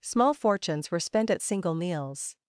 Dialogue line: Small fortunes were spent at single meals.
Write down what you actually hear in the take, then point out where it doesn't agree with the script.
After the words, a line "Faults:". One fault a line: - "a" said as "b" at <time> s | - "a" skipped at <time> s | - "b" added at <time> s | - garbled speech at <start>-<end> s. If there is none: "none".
Small fortunes were spent at single meals.
Faults:
none